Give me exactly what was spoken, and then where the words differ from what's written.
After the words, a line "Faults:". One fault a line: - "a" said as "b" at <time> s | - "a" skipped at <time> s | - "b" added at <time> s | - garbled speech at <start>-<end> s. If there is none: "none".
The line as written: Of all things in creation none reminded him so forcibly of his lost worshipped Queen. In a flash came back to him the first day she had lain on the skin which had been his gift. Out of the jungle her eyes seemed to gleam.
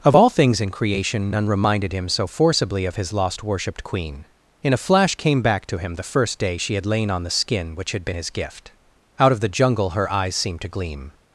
Of all things in creation none reminded him so forcibly of his lost worshipped Queen. In a flash came back to him the first day she had lain on the skin which had been his gift. Out of the jungle her eyes seemed to gleam.
Faults:
none